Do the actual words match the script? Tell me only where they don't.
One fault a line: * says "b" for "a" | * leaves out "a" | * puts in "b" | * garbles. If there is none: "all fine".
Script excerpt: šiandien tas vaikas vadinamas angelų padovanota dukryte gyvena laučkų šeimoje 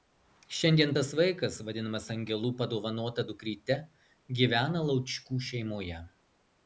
all fine